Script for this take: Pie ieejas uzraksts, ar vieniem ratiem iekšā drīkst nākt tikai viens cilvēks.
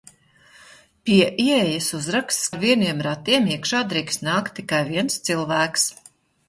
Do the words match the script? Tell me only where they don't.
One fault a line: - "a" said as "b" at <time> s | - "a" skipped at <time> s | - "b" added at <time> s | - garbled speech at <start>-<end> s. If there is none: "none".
none